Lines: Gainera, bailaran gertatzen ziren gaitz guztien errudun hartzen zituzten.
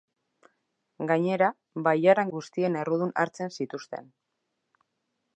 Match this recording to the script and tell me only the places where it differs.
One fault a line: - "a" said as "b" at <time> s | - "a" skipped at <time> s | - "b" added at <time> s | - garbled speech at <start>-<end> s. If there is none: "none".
- "gertatzen ziren gaitz" skipped at 2.3 s